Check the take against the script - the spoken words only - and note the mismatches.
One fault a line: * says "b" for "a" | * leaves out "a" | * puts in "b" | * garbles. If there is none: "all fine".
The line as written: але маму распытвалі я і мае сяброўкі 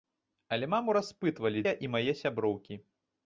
all fine